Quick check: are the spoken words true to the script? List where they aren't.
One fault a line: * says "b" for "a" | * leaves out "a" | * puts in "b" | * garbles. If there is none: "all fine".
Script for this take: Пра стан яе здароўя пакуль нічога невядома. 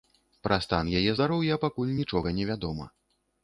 all fine